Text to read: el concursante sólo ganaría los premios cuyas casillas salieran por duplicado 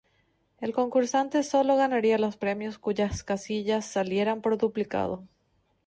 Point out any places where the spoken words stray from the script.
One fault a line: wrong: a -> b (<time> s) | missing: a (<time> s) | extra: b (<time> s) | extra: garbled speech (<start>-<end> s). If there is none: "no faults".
no faults